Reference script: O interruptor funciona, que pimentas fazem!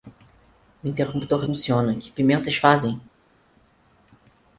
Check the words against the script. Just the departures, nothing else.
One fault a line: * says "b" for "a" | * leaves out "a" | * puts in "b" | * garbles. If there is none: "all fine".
all fine